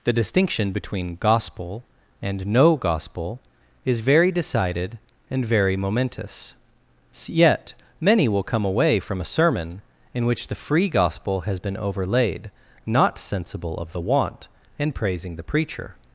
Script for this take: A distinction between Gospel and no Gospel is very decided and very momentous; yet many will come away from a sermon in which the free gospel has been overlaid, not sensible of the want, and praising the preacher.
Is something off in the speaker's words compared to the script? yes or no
yes